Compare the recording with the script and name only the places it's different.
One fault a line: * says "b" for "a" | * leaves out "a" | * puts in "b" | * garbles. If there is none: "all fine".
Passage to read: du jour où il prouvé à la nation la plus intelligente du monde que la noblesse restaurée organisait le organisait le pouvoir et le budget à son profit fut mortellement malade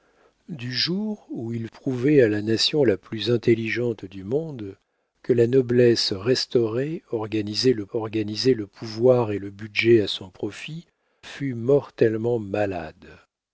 all fine